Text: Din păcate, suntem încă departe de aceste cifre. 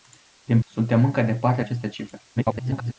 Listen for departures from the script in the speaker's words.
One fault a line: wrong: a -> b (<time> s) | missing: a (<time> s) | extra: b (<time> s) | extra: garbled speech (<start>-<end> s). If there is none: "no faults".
missing: păcate (0.6 s)
missing: de (1.6 s)
extra: garbled speech (2.4-2.9 s)